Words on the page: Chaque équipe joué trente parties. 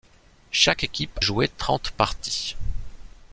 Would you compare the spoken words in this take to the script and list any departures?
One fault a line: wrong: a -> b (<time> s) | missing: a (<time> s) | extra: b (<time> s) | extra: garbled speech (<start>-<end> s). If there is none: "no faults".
no faults